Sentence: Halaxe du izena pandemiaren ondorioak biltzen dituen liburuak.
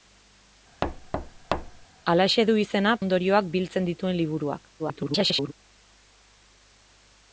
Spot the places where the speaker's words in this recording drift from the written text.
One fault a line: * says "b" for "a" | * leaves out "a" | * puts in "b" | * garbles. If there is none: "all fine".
* leaves out "pandemiaren"
* garbles